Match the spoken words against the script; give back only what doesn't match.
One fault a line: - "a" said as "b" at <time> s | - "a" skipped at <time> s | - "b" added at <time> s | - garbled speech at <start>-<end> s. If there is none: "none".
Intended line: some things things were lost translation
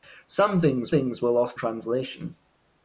none